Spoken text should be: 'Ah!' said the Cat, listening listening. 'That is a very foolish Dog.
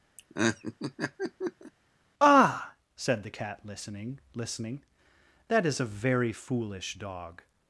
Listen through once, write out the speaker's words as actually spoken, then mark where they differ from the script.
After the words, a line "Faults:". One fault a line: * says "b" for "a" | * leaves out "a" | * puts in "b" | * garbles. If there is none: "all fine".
'Ah!' said the Cat, listening listening. 'That is a very foolish Dog.
Faults:
all fine